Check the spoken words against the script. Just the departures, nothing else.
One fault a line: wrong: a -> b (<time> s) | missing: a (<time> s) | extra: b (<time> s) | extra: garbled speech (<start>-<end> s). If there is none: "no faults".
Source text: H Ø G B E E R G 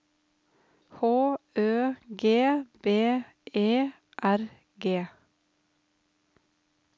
missing: E (3.9 s)